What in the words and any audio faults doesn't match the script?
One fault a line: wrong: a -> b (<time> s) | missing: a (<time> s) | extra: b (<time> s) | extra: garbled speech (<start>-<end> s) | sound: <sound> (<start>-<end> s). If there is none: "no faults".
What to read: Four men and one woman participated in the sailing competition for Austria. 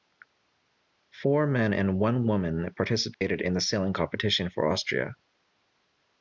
sound: dropout (3.1-3.2 s)